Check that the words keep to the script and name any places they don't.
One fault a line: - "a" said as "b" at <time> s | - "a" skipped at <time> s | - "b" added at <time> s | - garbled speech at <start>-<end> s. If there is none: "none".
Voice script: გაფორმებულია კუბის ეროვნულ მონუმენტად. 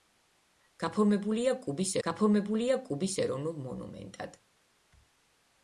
- "გაფორმებულია კუბის" added at 2.1 s